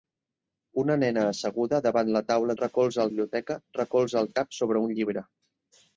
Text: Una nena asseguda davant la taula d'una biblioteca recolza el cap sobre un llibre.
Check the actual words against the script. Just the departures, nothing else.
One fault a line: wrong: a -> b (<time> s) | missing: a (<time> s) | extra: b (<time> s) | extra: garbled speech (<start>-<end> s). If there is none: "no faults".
wrong: d'una -> recolza (2.6 s)